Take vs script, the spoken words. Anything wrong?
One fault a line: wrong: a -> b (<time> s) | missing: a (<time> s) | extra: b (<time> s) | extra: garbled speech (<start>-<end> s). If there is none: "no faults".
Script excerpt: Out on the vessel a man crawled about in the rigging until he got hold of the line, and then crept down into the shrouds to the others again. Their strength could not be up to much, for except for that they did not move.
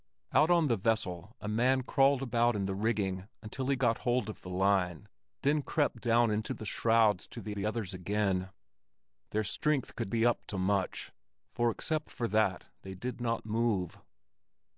missing: and (5.1 s)
extra: the (7.5 s)
missing: not (10.1 s)